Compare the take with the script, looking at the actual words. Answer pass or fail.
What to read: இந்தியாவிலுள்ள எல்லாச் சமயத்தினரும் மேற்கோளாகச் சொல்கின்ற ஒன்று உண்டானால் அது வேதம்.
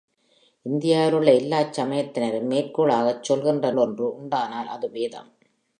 pass